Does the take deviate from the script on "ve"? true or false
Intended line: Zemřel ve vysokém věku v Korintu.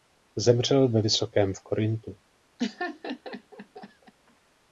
false